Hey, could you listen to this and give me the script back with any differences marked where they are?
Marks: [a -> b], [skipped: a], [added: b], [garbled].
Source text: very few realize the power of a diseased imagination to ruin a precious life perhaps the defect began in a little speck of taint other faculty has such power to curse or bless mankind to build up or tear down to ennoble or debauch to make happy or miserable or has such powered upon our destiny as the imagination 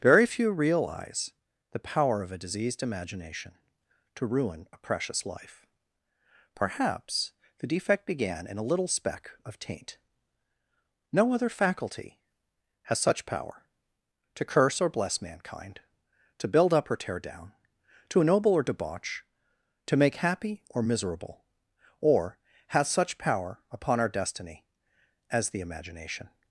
very few realize the power of a diseased imagination to ruin a precious life perhaps the defect began in a little speck of taint [added: no] other faculty has such power to curse or bless mankind to build up or tear down to ennoble or debauch to make happy or miserable or has such [powered -> power] upon our destiny as the imagination